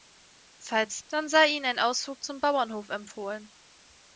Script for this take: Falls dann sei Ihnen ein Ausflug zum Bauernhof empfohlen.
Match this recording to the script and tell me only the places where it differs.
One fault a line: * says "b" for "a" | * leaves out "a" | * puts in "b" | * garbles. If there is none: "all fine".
all fine